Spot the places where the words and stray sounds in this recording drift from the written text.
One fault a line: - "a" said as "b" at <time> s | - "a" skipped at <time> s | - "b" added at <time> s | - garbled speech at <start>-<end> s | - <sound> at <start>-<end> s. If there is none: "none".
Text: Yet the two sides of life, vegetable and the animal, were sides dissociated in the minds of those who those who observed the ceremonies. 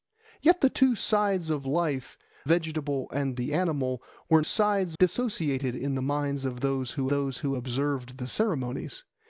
none